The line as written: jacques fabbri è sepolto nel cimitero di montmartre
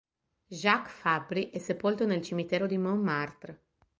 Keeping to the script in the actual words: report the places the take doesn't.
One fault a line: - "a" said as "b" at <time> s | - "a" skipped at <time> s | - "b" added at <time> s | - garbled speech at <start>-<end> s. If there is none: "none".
none